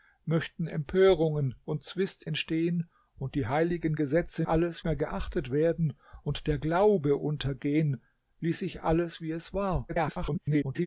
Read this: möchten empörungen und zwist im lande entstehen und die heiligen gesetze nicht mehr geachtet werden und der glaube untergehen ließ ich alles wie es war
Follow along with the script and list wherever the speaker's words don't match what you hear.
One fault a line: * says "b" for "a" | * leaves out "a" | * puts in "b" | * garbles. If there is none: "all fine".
* leaves out "im lande"
* says "alles" for "nicht"
* garbles